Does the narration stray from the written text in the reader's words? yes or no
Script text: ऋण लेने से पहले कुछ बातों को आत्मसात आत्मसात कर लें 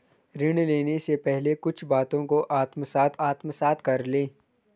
no